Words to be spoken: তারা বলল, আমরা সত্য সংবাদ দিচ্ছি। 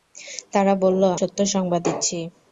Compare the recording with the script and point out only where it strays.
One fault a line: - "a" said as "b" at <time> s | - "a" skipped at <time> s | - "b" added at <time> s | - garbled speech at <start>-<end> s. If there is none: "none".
- "আমরা" skipped at 1.0 s